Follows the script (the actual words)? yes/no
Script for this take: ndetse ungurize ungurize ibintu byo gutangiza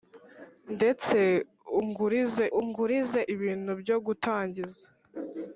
yes